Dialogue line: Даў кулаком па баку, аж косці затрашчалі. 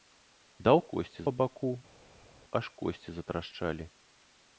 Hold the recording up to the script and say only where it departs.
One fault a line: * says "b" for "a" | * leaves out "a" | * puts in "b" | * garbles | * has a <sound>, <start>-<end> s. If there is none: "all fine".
* says "косці" for "кулаком"